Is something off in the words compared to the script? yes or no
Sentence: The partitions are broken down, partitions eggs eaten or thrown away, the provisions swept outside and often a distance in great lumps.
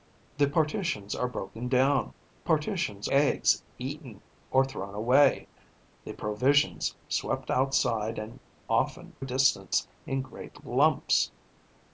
no